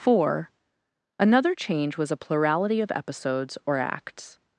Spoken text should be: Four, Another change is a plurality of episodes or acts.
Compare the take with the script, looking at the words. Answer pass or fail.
fail